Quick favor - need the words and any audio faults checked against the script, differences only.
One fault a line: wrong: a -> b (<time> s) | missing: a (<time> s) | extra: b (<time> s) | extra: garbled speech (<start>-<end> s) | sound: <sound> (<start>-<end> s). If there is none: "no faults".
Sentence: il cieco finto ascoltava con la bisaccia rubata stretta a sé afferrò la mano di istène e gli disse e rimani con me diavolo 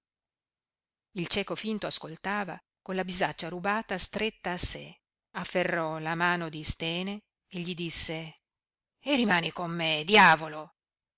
no faults